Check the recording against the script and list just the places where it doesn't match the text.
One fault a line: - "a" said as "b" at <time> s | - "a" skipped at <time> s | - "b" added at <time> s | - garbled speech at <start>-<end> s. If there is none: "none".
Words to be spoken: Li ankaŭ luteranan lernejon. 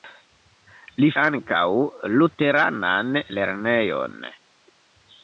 none